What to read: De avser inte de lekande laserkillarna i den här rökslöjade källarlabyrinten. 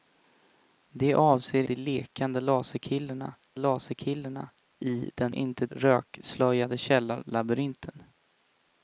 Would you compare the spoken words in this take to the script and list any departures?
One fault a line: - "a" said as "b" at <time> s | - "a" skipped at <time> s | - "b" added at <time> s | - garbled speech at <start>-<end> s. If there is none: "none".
- "inte" skipped at 1.6 s
- "laserkillarna" added at 3.6 s
- "här" said as "inte" at 5.3 s